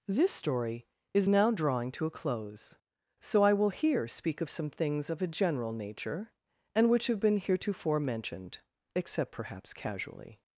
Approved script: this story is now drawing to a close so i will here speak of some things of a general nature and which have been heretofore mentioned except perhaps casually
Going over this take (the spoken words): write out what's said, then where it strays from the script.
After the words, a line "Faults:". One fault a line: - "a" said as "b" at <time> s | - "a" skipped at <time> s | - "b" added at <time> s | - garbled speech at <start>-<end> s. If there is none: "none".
this story is now drawing to a close so i will here speak of some things of a general nature and which have been heretofore mentioned except perhaps casually
Faults:
none